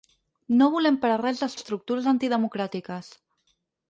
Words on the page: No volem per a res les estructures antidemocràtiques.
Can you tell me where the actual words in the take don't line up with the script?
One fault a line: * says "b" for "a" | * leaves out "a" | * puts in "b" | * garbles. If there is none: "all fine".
all fine